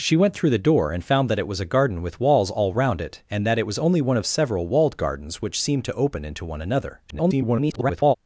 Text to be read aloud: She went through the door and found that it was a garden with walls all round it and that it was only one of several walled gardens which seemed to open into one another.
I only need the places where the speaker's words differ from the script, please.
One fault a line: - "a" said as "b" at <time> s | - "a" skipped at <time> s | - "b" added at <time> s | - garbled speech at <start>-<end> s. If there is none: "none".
- garbled speech at 7.1-8.2 s